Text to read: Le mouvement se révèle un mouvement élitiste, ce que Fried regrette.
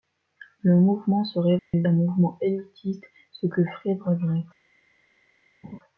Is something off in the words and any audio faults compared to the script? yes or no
yes